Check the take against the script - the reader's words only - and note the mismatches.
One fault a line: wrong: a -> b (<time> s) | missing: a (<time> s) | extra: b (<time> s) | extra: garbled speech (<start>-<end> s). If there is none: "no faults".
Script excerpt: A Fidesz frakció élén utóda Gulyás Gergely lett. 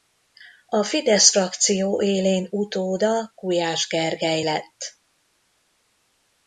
no faults